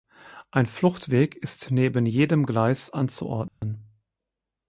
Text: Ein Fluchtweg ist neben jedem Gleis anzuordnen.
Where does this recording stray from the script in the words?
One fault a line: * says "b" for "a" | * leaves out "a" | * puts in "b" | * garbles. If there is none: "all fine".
all fine